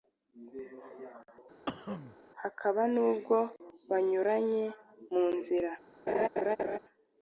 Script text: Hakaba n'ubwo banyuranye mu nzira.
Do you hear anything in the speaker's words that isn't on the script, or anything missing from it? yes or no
no